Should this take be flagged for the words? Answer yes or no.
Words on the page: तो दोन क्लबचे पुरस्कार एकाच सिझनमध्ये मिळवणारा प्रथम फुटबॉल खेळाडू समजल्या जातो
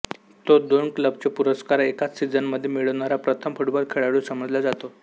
no